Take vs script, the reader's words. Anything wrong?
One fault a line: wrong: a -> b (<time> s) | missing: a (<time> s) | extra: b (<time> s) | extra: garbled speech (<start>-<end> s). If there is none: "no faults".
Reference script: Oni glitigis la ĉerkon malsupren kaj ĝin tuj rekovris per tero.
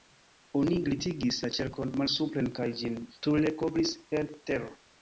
no faults